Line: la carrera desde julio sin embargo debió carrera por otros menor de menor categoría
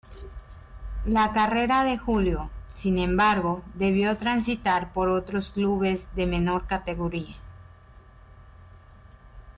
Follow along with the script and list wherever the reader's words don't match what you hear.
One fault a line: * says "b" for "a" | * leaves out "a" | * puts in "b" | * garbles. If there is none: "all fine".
* says "de" for "desde"
* says "transitar" for "carrera"
* says "clubes" for "menor"